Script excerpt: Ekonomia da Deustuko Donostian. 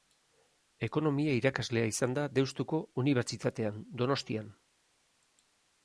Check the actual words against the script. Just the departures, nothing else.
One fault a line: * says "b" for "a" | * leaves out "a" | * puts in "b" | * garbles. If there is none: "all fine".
* puts in "irakaslea izan"
* puts in "Unibertsitatean"